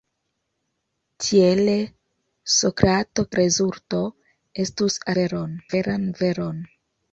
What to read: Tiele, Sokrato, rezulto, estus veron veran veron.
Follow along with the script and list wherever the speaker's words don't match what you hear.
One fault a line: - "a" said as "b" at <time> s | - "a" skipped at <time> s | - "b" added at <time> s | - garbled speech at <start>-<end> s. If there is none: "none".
none